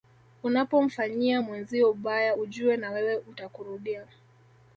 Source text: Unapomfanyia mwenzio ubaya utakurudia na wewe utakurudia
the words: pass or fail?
fail